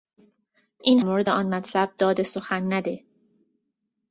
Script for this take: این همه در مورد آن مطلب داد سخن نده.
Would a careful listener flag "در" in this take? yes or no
yes